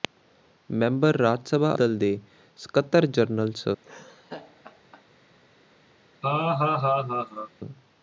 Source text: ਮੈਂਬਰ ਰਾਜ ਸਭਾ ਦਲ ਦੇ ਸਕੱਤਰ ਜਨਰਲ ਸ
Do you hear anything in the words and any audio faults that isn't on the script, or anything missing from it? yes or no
yes